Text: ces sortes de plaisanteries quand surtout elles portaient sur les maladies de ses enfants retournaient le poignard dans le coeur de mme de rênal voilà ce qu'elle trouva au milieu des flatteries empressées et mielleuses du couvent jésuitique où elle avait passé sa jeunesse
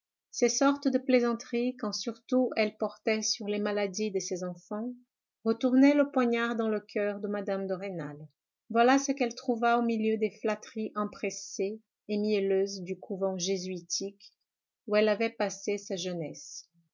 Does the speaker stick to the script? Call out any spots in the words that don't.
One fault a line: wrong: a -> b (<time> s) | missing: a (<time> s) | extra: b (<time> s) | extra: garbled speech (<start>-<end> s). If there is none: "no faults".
no faults